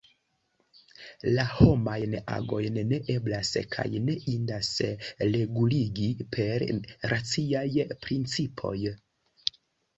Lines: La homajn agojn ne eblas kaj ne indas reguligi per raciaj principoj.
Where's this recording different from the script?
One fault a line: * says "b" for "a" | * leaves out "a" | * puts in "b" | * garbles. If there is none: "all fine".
all fine